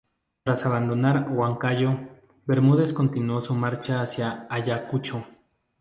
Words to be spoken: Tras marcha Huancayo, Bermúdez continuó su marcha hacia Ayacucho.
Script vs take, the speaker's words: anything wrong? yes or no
yes